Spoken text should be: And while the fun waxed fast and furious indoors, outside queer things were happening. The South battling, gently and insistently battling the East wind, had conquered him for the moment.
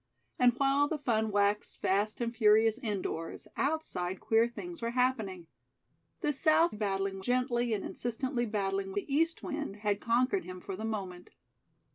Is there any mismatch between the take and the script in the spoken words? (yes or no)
no